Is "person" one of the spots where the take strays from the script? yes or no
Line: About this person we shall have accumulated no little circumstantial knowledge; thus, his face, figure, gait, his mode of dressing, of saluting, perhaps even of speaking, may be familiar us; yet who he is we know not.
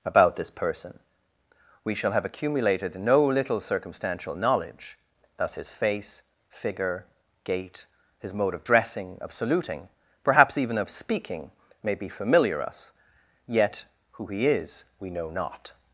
no